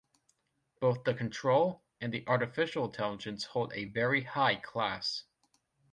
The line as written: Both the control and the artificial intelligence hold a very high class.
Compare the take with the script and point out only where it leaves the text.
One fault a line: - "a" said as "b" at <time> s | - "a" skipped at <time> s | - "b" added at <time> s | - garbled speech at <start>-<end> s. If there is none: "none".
none